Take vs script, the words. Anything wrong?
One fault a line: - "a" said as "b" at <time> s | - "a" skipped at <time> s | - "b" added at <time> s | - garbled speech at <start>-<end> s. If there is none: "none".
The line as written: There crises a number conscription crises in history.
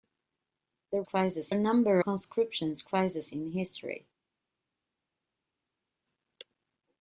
none